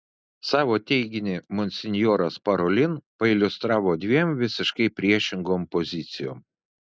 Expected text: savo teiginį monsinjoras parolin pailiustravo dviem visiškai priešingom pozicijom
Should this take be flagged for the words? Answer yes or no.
no